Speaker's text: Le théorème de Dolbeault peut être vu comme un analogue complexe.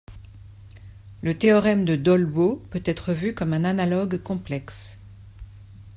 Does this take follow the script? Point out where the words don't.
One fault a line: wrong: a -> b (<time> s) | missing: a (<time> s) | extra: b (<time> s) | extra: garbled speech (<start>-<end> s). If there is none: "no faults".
no faults